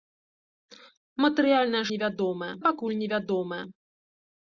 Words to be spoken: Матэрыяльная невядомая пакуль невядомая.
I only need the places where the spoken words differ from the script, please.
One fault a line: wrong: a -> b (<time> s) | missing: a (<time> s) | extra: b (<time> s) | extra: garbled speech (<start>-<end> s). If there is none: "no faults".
no faults